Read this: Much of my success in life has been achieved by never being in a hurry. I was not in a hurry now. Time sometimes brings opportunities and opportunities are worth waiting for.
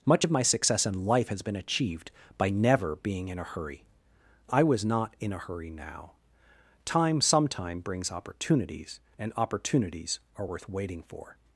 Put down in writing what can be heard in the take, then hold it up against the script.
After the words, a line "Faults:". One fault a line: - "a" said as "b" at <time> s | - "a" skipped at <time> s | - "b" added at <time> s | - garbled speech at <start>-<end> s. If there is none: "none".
Much of my success in life has been achieved by never being in a hurry. I was not in a hurry now. Time sometime brings opportunities and opportunities are worth waiting for.
Faults:
- "sometimes" said as "sometime" at 7.2 s